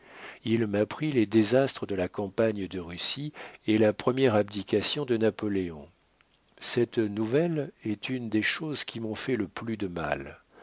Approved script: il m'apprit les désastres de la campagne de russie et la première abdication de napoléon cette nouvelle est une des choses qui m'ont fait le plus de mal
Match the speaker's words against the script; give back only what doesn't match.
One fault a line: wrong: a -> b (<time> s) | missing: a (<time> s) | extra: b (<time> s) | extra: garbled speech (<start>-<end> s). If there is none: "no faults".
no faults